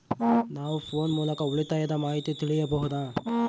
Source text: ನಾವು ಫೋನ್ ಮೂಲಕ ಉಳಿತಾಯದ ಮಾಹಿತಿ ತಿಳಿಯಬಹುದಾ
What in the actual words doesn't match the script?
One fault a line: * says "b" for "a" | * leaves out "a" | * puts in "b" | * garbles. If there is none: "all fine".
all fine